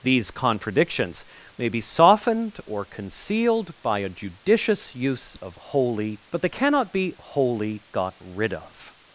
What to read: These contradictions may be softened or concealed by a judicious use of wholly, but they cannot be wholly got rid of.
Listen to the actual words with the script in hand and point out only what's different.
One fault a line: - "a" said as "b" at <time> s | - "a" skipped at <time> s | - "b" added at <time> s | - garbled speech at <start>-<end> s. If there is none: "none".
none